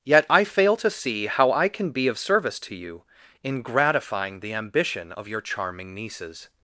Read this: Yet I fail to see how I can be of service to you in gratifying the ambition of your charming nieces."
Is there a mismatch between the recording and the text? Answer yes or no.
no